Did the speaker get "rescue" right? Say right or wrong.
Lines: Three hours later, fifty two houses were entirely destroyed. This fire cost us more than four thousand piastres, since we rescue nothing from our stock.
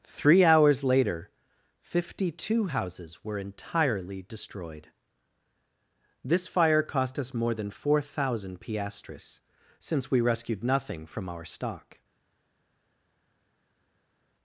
wrong